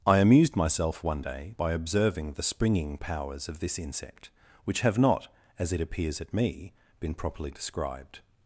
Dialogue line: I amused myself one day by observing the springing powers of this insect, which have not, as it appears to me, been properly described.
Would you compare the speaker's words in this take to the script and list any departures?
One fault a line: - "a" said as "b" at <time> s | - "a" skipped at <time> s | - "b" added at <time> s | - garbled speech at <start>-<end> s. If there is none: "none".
- "to" said as "at" at 6.2 s